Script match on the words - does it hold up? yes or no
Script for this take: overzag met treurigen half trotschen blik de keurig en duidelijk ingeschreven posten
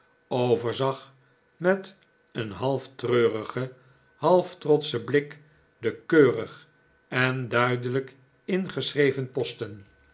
no